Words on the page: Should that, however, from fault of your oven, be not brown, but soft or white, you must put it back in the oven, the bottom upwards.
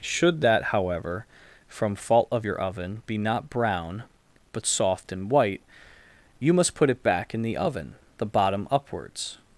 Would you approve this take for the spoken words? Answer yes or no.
no